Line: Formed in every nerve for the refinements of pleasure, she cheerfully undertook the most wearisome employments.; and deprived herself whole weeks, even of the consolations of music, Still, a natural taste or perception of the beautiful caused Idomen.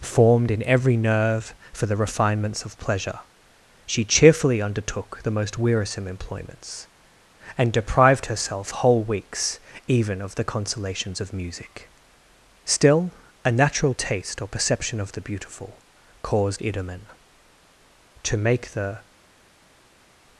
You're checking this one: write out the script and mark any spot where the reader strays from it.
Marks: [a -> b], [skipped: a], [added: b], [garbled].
Formed in every nerve for the refinements of pleasure, she cheerfully undertook the most wearisome employments.; and deprived herself whole weeks, even of the consolations of music, Still, a natural taste or perception of the beautiful caused Idomen. [added: to make the]